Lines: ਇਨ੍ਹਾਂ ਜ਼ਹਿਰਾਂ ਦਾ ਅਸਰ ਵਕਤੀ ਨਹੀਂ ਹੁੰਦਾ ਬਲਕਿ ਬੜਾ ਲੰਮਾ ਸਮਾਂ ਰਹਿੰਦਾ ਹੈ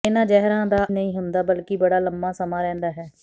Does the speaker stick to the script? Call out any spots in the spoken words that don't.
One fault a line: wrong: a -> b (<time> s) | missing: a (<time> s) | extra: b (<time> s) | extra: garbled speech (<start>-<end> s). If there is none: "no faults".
missing: ਅਸਰ ਵਕਤੀ (0.8 s)